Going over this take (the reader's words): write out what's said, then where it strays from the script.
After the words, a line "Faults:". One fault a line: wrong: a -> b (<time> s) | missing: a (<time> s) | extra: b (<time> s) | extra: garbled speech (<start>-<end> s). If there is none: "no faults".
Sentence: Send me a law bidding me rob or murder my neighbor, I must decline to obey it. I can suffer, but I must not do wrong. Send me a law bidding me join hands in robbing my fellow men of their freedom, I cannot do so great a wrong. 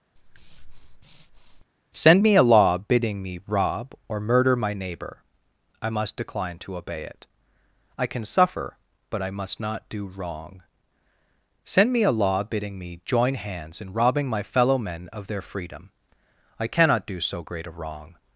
Send me a law bidding me rob or murder my neighbor, I must decline to obey it. I can suffer, but I must not do wrong. Send me a law bidding me join hands in robbing my fellow men of their freedom, I cannot do so great a wrong.
Faults:
no faults